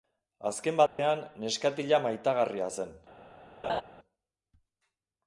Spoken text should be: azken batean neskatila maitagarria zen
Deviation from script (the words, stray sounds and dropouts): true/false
true